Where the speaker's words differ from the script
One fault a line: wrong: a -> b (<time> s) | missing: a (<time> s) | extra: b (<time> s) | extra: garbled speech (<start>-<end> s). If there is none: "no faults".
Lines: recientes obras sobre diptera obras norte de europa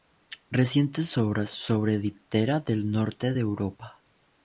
wrong: obras -> del (2.6 s)